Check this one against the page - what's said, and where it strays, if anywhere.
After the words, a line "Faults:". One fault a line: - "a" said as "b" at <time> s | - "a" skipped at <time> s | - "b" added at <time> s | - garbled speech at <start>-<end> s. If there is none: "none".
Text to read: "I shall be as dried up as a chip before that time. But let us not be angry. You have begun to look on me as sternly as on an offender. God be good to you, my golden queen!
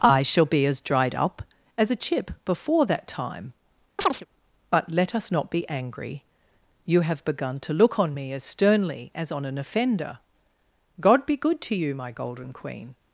"I shall be as dried up as a chip before that time. But let us not be angry. You have begun to look on me as sternly as on an offender. God be good to you, my golden queen!
Faults:
none